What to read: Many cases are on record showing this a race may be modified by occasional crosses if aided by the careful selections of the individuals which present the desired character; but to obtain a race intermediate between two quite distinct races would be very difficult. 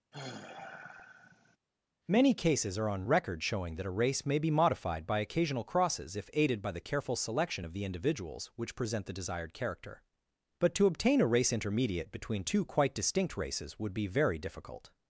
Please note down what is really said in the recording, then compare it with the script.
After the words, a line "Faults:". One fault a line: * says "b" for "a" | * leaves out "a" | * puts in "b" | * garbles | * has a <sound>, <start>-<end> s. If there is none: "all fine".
Many cases are on record showing that a race may be modified by occasional crosses if aided by the careful selection of the individuals which present the desired character; but to obtain a race intermediate between two quite distinct races would be very difficult.
Faults:
* has a sigh, 0.1-1.6 s
* says "that" for "this"
* says "selection" for "selections"